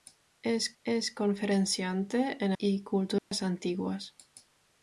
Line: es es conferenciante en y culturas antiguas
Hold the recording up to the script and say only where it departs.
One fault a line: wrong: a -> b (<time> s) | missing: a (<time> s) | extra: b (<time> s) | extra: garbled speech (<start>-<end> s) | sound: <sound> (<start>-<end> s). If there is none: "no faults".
sound: dropout (3.2-3.3 s)